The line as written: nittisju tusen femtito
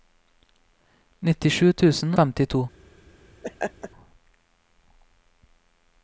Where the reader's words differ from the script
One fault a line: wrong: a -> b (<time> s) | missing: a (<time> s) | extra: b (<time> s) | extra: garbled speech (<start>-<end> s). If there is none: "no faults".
no faults